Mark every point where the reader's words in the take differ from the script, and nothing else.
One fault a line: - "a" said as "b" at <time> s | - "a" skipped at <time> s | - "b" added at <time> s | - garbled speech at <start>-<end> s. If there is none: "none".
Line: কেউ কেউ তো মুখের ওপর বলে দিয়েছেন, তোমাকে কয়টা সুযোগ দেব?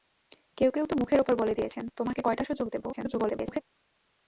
- garbled speech at 2.9-3.6 s